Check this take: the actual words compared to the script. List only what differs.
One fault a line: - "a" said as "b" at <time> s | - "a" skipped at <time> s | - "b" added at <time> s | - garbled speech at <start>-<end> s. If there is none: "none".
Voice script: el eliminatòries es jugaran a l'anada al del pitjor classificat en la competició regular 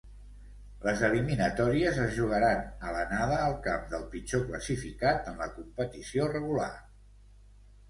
- "el" said as "les" at 0.8 s
- "camp" added at 3.7 s